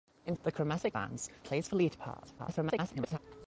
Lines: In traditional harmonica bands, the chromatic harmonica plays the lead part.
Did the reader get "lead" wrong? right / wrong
right